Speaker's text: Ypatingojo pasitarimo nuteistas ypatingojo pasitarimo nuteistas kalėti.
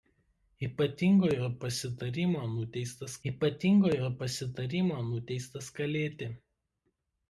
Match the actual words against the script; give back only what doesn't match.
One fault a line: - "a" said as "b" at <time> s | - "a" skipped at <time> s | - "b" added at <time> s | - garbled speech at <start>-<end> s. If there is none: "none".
none